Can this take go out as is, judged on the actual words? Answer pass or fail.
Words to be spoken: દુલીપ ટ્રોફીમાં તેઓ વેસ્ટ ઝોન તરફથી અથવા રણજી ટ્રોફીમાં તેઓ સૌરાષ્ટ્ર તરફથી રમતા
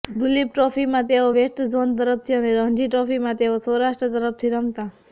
fail